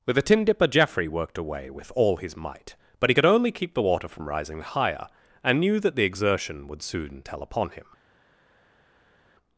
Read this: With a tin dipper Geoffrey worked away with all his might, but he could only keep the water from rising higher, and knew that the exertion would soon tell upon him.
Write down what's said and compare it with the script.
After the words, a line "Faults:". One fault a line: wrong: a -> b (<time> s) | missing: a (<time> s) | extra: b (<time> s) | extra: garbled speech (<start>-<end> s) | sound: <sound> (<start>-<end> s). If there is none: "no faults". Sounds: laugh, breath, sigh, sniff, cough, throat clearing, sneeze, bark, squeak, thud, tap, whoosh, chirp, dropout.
With a tin dipper Geoffrey worked away with all his might, but he could only keep the water from rising higher, and knew that the exertion would soon tell upon him.
Faults:
no faults